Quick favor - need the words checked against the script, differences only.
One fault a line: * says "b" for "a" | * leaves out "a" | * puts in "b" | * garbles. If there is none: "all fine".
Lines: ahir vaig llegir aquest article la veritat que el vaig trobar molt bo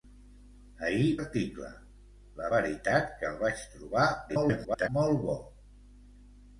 * leaves out "vaig llegir aquest"
* garbles